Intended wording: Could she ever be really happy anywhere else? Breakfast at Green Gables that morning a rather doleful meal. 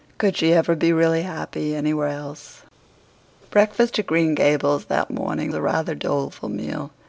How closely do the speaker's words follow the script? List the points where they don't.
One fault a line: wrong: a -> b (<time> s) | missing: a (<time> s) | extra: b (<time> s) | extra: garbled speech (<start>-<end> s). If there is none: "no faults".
no faults